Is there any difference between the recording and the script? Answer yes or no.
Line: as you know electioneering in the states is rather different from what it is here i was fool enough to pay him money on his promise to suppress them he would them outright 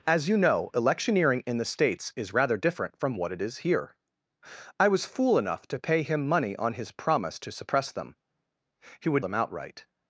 no